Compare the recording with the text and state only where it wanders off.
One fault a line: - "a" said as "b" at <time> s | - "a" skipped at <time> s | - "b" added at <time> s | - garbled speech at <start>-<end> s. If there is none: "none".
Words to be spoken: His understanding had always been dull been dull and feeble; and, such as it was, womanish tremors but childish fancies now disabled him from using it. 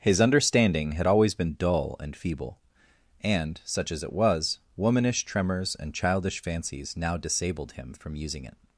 - "been dull" skipped at 1.9 s
- "but" said as "and" at 5.8 s